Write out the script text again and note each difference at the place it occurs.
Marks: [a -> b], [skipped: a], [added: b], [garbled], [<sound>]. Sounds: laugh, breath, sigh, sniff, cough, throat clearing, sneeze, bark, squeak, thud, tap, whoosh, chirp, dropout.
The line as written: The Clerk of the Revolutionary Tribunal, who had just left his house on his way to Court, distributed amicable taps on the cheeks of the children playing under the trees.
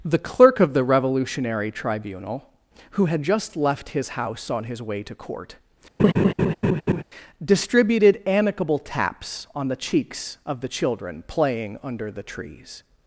The Clerk of the Revolutionary Tribunal, who had just left his house on his way to Court, [laugh] distributed amicable taps on the cheeks of the children playing under the trees.